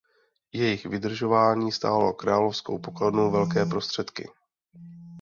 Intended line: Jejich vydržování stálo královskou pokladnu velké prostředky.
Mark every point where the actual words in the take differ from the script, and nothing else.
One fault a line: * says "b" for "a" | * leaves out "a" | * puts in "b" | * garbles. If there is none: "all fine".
all fine